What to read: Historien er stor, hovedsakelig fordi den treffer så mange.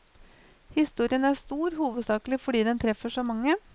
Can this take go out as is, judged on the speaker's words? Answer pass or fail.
pass